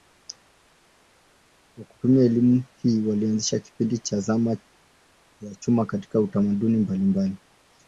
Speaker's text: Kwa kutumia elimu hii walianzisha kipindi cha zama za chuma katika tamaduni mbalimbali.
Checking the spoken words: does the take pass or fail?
pass